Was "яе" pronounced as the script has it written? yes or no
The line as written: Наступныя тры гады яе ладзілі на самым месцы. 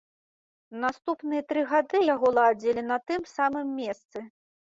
no